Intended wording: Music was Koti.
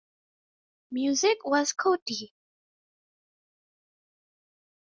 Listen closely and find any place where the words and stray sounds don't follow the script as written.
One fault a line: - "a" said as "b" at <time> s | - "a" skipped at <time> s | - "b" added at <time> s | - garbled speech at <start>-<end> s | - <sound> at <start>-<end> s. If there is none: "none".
none